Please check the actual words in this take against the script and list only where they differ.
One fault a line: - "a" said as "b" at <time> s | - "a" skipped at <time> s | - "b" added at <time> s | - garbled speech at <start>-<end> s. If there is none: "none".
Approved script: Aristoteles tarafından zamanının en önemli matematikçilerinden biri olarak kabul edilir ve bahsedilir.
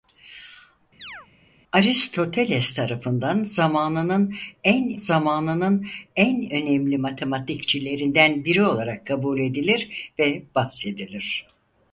- "zamanının en" added at 4.9 s